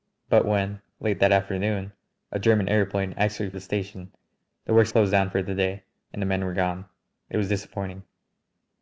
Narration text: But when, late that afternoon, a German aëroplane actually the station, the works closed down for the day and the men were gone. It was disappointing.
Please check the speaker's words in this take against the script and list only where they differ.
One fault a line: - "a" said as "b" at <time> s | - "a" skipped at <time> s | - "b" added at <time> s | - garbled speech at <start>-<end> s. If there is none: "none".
none